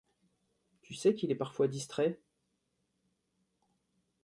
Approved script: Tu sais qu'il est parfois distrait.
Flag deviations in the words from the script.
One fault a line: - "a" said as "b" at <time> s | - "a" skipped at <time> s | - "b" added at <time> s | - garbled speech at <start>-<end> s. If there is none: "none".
none